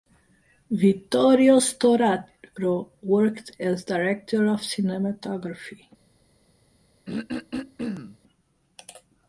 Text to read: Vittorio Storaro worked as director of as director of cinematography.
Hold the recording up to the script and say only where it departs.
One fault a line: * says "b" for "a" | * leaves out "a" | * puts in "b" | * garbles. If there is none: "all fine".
* leaves out "as director of"